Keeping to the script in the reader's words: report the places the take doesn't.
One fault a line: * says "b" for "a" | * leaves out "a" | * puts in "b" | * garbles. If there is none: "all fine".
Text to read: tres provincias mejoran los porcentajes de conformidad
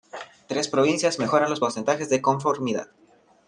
all fine